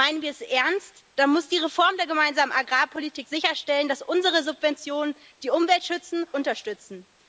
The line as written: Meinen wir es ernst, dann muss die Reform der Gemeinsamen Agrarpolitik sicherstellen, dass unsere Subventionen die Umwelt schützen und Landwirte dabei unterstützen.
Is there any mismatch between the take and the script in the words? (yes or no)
yes